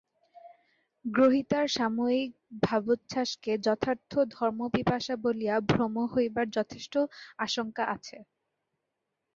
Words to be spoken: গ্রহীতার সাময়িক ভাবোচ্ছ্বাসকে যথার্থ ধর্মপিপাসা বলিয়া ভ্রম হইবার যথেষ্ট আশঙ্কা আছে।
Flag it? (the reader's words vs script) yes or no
no